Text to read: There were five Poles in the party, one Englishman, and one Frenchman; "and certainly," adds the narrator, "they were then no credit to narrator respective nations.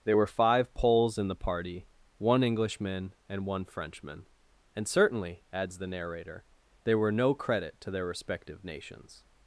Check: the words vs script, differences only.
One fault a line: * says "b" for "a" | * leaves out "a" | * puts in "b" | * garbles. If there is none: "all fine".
* leaves out "then"
* says "their" for "narrator"